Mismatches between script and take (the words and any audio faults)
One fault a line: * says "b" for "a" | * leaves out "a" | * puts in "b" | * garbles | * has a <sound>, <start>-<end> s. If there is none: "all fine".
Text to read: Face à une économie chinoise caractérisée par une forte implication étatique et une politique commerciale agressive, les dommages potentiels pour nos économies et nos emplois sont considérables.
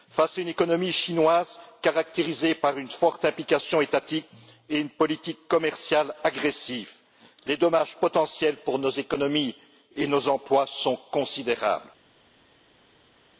all fine